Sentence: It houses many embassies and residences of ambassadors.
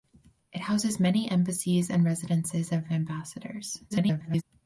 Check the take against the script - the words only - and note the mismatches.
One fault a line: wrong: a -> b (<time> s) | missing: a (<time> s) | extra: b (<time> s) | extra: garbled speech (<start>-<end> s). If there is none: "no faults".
extra: garbled speech (3.9-4.4 s)